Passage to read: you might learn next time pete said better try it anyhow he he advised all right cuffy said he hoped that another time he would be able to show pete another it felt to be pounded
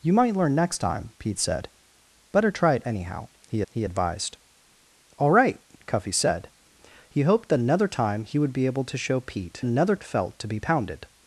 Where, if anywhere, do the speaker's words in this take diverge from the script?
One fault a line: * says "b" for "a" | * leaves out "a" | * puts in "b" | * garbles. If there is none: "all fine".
all fine